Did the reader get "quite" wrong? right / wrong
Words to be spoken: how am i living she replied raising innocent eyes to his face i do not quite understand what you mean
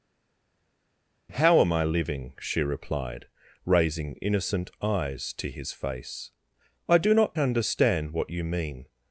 wrong